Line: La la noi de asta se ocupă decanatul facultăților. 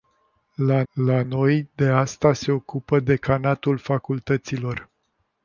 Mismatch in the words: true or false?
false